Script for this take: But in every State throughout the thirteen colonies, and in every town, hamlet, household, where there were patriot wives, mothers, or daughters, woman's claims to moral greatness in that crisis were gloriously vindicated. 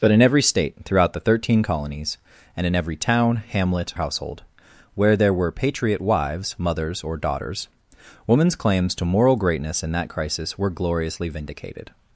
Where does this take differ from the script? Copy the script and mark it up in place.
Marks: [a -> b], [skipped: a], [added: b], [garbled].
But in every State throughout the thirteen colonies, and in every town, hamlet, household, where there were patriot wives, mothers, or daughters, woman's claims to moral greatness in that crisis were gloriously vindicated.